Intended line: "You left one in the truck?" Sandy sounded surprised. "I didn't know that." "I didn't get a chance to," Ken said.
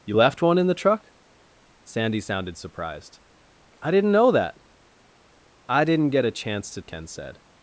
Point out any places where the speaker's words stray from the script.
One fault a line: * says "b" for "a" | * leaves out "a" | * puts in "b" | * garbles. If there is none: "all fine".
all fine